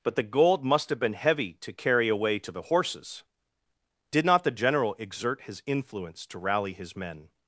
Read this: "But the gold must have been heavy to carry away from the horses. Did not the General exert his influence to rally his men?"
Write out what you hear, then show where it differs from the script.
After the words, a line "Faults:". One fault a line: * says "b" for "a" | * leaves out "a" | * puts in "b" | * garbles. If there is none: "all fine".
"But the gold must have been heavy to carry away to the horses. Did not the General exert his influence to rally his men?"
Faults:
* says "to" for "from"